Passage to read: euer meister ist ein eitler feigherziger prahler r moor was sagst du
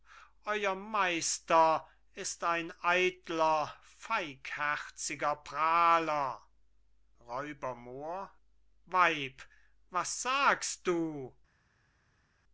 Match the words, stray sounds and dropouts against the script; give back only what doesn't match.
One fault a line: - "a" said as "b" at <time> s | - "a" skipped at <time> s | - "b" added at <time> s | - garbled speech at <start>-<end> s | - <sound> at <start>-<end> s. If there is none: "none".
- "weib" added at 8.9 s